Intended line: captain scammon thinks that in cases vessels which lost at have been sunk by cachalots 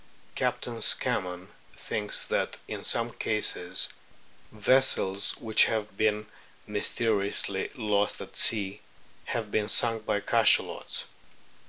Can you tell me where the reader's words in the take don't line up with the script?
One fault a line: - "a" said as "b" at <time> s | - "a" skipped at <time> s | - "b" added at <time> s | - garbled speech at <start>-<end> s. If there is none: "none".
- "some" added at 2.8 s
- "have been mysteriously" added at 5.6 s
- "sea" added at 8.4 s